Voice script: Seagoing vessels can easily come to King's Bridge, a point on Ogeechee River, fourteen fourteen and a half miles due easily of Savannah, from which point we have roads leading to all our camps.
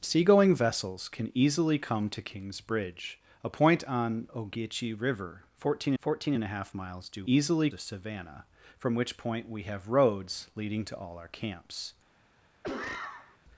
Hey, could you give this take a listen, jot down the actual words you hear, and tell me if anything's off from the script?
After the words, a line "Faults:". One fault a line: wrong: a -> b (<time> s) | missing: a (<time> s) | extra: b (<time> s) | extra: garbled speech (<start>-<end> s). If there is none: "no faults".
Seagoing vessels can easily come to King's Bridge, a point on Ogeechee River, fourteen fourteen and a half miles due easily of Savannah, from which point we have roads leading to all our camps.
Faults:
no faults